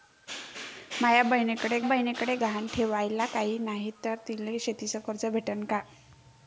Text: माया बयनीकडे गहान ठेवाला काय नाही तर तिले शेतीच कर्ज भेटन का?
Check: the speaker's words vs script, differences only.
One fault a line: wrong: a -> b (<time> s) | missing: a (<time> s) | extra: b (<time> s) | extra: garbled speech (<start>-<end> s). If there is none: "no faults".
extra: बयनीकडे (1.8 s)